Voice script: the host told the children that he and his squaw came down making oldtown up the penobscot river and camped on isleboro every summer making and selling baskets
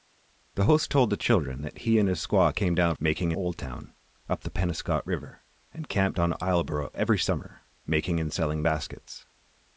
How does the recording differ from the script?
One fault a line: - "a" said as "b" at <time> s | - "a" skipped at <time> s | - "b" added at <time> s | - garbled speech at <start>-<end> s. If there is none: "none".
none